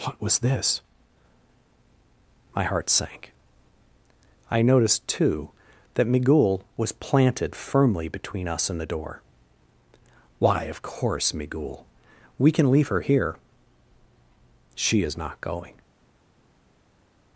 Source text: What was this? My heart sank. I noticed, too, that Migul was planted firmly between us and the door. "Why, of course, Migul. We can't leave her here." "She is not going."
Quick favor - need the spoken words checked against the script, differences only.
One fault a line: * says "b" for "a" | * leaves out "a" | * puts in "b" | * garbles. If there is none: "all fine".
* says "can" for "can't"